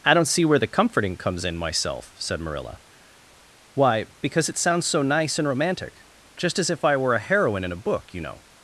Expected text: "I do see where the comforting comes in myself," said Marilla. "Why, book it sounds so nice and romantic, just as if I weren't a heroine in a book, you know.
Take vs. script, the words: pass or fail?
fail